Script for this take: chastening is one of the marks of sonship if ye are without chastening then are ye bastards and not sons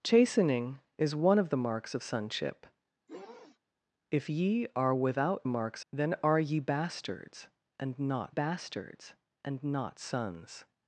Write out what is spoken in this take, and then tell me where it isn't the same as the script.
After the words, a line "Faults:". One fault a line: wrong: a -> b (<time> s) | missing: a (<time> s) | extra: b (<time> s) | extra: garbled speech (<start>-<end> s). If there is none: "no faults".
chastening is one of the marks of sonship if ye are without marks then are ye bastards and not bastards and not sons
Faults:
wrong: chastening -> marks (5.5 s)
extra: bastards and not (8.3 s)